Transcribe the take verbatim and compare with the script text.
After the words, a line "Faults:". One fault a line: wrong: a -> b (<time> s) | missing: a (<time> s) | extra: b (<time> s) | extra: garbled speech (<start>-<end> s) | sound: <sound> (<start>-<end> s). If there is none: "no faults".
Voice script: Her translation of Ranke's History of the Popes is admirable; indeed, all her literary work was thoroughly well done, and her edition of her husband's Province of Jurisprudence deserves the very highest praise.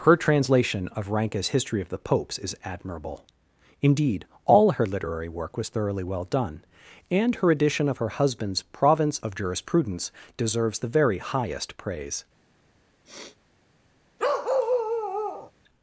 Her translation of Ranke's History of the Popes is admirable; indeed, all her literary work was thoroughly well done, and her edition of her husband's Province of Jurisprudence deserves the very highest praise.
Faults:
sound: sniff (13.0-13.4 s)
sound: bark (14.2-15.5 s)